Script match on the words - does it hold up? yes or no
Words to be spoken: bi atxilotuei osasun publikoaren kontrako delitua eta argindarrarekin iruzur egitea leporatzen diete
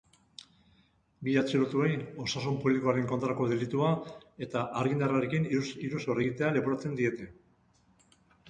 yes